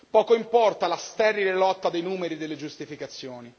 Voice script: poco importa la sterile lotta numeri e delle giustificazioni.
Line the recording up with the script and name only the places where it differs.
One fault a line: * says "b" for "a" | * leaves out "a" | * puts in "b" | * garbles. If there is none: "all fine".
* puts in "dei"